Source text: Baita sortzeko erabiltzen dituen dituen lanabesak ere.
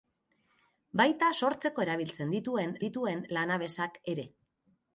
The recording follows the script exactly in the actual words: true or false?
true